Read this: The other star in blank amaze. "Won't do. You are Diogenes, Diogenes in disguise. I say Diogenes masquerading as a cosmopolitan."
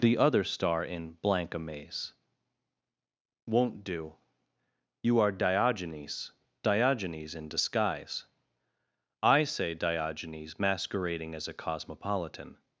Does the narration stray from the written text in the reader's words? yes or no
no